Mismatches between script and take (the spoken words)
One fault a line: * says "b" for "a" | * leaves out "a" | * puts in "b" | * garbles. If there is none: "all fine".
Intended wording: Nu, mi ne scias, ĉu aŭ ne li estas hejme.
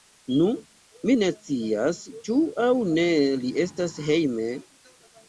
all fine